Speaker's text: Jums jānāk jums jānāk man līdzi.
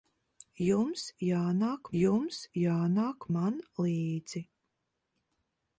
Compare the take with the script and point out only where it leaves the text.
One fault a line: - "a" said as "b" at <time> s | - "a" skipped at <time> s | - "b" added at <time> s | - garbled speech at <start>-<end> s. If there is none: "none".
none